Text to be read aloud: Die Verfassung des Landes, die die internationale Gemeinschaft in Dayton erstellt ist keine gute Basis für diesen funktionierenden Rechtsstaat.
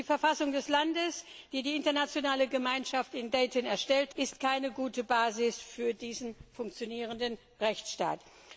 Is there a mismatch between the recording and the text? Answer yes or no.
no